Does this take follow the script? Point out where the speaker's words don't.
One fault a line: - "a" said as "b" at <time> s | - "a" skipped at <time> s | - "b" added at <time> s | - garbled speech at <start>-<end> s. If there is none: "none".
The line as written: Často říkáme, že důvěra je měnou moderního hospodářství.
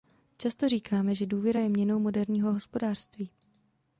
none